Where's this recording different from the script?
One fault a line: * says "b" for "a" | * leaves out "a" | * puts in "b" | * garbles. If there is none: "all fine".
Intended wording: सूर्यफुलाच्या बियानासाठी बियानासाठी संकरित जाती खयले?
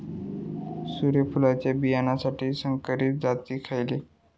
* leaves out "बियानासाठी"